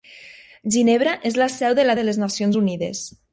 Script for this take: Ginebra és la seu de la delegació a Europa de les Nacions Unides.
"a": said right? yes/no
no